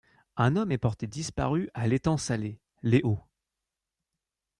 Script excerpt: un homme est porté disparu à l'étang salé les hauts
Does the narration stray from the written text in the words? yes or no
no